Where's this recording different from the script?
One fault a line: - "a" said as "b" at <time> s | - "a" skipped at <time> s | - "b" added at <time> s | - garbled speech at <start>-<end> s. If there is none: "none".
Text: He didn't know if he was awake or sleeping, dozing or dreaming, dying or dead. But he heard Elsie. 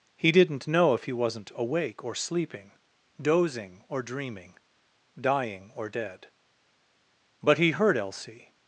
- "was" said as "wasn't" at 1.1 s